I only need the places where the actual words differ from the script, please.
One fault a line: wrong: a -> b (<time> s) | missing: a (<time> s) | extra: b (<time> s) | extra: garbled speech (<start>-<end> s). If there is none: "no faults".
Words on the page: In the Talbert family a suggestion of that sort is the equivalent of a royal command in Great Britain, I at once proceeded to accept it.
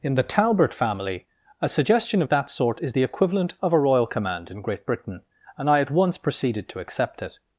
extra: and (5.6 s)